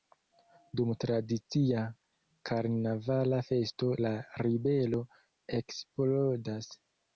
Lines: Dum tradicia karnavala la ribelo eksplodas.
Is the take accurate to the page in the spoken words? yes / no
no